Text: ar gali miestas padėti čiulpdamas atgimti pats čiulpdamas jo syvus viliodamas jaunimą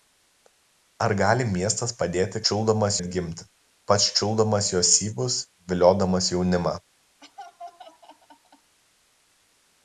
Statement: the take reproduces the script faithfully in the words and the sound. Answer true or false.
false